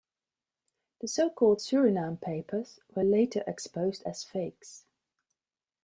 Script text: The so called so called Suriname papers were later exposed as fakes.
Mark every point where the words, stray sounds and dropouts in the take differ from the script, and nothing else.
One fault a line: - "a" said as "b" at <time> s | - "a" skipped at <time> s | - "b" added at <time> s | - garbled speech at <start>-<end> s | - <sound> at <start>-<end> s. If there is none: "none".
- "so called" skipped at 1.6 s